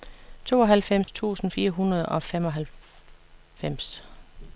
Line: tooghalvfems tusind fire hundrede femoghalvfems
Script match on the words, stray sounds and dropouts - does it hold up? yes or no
no